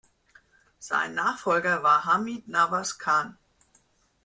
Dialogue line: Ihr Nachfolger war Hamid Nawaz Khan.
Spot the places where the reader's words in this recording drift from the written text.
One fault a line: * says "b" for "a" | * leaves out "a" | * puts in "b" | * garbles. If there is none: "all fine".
* says "Sein" for "Ihr"